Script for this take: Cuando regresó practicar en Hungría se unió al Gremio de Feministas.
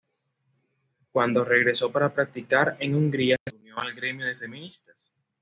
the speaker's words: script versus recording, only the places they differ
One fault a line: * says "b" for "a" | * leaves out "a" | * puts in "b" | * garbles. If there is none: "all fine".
* puts in "para"